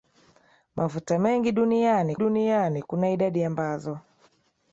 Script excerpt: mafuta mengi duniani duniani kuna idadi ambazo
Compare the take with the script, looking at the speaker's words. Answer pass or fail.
pass